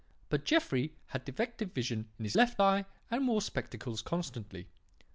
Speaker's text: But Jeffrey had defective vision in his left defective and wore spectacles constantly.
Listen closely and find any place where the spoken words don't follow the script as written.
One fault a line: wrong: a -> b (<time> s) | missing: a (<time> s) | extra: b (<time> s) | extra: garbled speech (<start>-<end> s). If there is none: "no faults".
wrong: defective -> eye (2.6 s)